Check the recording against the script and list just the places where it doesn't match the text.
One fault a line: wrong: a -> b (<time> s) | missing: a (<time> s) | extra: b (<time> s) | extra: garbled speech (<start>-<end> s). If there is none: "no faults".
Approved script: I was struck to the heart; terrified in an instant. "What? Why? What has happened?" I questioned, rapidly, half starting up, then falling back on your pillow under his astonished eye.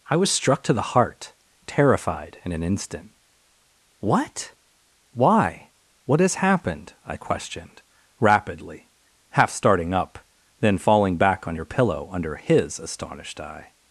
no faults